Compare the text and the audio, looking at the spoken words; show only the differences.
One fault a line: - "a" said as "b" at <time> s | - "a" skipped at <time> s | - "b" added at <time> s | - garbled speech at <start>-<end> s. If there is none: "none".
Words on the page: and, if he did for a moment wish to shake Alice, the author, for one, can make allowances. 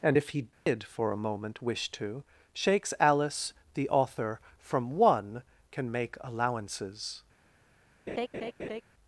- "shake" said as "shakes" at 2.5 s
- "for" said as "from" at 4.6 s